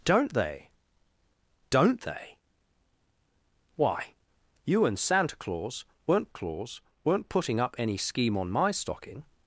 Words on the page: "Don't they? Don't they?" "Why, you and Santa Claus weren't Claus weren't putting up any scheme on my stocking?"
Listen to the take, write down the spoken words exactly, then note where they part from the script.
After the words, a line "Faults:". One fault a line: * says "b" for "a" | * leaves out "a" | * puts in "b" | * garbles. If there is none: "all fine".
"Don't they? Don't they?" "Why, you and Santa Claus weren't Claus weren't putting up any scheme on my stocking?"
Faults:
all fine